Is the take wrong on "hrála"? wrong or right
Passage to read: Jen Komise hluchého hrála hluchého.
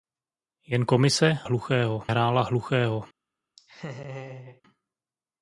right